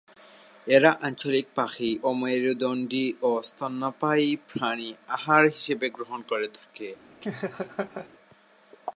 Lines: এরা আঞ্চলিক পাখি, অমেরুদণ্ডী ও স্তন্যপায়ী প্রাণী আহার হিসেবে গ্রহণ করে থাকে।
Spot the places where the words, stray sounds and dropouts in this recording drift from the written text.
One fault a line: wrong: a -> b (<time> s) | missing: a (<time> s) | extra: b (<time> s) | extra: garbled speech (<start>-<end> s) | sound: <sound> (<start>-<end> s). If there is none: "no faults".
sound: laugh (7.2-8.1 s)